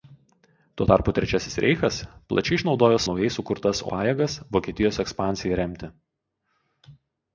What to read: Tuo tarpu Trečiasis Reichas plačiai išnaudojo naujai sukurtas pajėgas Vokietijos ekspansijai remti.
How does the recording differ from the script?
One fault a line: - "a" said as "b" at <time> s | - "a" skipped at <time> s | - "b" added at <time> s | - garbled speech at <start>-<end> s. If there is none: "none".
none